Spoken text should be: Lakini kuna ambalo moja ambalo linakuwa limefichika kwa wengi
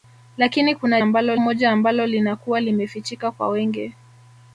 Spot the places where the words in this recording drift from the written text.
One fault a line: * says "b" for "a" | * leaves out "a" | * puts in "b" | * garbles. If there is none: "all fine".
all fine